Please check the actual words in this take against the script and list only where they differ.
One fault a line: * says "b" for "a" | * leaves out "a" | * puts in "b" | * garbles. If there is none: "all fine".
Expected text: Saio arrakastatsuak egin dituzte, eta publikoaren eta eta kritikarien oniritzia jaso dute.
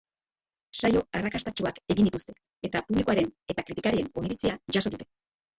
* leaves out "eta"